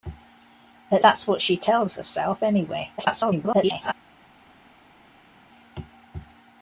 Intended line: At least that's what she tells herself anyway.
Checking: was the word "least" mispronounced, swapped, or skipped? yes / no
yes